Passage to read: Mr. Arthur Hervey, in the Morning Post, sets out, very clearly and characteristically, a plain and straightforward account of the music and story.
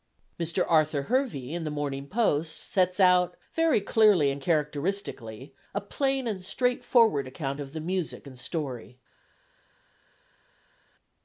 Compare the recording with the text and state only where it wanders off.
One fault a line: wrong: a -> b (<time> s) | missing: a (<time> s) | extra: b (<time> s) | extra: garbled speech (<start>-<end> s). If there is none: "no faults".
no faults